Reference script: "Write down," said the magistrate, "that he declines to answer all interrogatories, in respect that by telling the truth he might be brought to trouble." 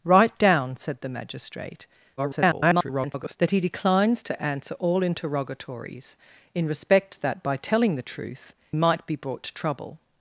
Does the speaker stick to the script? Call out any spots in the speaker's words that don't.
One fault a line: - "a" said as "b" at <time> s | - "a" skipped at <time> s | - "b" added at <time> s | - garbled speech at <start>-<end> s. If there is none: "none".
- garbled speech at 2.2-3.4 s
- "he" skipped at 8.5 s